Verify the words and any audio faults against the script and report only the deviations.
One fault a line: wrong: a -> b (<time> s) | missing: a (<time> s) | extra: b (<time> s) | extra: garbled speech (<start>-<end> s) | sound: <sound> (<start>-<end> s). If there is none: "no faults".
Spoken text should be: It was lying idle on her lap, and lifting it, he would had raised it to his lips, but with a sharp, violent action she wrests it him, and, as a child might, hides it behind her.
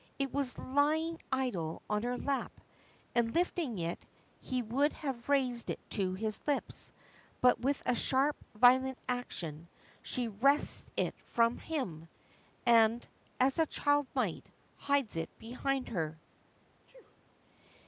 wrong: had -> have (4.9 s)
extra: from (11.2 s)
sound: sneeze (16.8-17.2 s)